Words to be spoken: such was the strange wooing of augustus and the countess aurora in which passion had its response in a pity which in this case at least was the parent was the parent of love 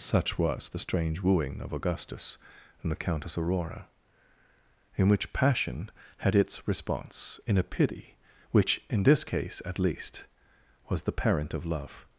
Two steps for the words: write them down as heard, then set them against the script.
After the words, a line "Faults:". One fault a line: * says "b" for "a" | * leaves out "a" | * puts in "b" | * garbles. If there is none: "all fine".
such was the strange wooing of augustus and the countess aurora in which passion had its response in a pity which in this case at least was the parent of love
Faults:
* leaves out "was the parent"